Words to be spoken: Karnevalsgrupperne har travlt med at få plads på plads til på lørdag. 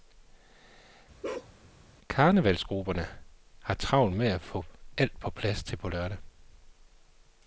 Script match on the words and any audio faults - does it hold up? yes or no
no